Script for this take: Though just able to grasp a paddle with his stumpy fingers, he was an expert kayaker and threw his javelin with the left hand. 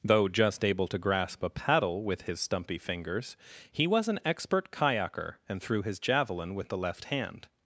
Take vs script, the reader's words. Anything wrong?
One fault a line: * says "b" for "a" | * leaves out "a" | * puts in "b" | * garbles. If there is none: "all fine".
all fine